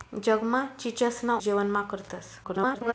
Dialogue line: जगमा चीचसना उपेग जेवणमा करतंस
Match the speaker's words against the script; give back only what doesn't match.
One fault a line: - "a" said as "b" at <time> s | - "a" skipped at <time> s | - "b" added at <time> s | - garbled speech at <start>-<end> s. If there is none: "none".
- "उपेग" skipped at 1.4 s
- garbled speech at 2.4-2.9 s